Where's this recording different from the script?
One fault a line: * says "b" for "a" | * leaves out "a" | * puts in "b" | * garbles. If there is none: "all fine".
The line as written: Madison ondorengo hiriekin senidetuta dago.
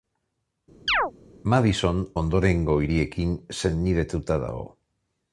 all fine